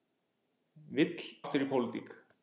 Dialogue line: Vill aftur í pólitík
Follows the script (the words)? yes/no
yes